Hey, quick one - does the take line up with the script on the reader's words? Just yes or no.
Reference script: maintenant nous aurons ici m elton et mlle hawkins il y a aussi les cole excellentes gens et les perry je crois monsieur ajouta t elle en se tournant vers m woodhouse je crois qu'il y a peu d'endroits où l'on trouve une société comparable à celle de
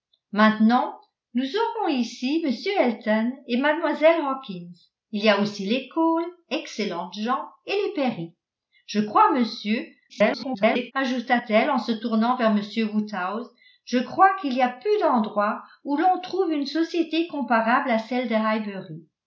no